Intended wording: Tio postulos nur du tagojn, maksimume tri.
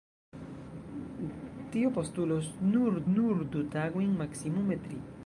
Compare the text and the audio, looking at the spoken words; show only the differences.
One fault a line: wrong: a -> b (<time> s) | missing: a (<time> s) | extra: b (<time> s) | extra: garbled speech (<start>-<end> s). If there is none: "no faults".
extra: nur (3.2 s)